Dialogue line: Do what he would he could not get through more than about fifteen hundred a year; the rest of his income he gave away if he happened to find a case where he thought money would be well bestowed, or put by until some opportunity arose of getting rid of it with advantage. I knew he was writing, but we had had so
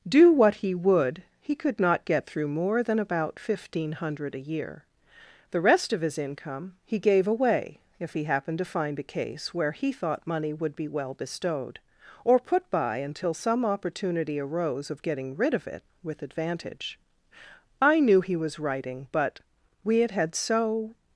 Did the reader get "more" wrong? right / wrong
right